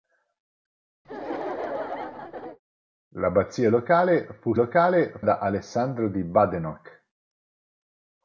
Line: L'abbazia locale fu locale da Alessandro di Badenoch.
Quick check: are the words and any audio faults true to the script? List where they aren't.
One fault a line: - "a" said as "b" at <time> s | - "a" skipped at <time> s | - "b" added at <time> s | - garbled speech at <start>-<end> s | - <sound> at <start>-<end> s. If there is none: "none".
- laugh at 1.0-2.6 s